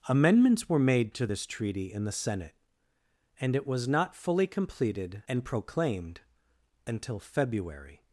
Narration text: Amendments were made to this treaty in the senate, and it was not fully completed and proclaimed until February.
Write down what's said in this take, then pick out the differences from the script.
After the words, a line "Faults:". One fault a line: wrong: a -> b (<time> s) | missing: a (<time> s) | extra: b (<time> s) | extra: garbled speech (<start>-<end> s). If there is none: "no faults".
Amendments were made to this treaty in the senate, and it was not fully completed and proclaimed until February.
Faults:
no faults